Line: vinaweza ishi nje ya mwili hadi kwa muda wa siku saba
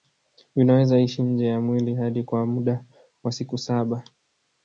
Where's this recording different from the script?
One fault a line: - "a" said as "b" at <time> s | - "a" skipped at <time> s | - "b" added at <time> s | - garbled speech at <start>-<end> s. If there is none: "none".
none